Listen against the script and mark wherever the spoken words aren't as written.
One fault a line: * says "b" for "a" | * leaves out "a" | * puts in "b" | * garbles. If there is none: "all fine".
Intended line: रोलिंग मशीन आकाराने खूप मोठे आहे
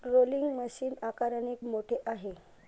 * leaves out "खूप"